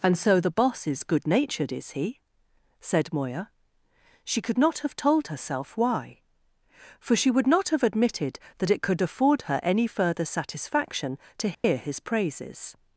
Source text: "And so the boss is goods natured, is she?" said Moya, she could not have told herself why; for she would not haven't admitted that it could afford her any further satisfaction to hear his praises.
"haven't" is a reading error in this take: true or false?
true